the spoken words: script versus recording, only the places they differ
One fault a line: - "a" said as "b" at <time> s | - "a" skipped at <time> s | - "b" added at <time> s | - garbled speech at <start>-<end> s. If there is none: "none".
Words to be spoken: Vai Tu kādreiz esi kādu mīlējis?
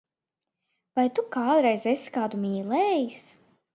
none